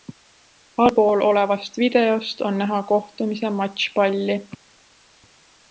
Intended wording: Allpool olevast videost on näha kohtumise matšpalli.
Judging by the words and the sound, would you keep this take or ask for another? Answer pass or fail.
pass